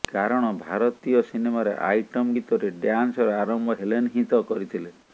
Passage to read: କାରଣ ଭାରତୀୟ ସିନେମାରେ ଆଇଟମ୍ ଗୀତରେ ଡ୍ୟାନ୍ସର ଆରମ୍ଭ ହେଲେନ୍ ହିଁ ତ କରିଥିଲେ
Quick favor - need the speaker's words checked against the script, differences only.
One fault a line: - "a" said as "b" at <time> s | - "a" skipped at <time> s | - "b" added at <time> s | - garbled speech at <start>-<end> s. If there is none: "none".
none